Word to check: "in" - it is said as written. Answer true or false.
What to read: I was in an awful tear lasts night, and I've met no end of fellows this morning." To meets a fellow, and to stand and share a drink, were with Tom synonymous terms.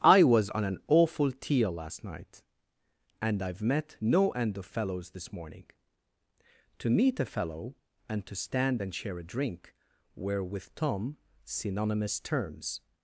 false